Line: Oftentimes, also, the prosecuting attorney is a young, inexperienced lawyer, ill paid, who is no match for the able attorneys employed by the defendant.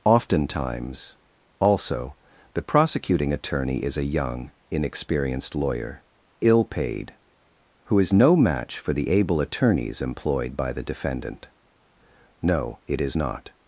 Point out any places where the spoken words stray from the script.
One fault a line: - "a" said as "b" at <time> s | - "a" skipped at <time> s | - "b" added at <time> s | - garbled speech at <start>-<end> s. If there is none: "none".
- "No it is not" added at 12.4 s